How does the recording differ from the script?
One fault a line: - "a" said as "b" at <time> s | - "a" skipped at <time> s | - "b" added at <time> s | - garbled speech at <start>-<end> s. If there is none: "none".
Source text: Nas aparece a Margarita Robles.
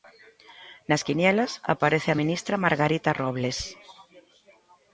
- "quinielas" added at 1.1 s
- "ministra" added at 2.2 s